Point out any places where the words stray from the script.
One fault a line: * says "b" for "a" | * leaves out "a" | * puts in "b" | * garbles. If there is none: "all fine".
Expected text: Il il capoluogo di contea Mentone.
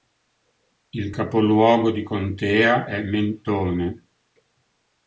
* leaves out "il"
* puts in "è"